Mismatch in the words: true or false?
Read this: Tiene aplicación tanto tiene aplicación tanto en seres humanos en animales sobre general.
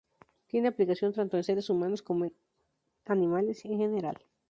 true